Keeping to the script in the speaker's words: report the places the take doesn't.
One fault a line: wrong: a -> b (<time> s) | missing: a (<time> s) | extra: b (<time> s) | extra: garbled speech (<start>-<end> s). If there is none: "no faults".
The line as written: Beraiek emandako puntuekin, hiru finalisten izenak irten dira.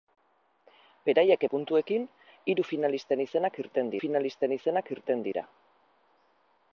missing: emandako (1.4 s)
extra: finalisten izenak irten (4.0 s)